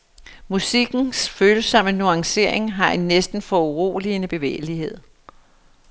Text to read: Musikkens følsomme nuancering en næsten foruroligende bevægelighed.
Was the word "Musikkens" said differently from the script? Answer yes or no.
no